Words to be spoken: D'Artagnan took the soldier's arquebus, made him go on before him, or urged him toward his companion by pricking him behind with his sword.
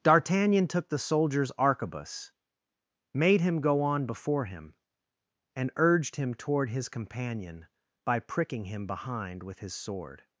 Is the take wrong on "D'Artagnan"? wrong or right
right